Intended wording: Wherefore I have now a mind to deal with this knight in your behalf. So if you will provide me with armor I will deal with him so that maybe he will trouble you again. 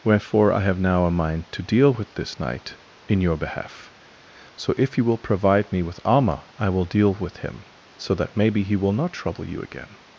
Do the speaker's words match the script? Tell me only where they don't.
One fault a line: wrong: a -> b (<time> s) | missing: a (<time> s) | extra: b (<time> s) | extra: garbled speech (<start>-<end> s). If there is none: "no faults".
extra: not (8.9 s)